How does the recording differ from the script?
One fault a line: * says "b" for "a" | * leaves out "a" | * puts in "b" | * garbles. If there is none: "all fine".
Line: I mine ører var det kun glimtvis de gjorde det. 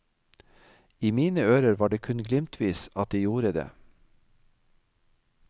* puts in "at"